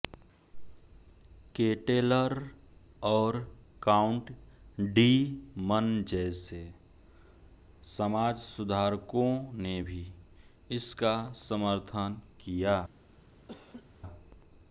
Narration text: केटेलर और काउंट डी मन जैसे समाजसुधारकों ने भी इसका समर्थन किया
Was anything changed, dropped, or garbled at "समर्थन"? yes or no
no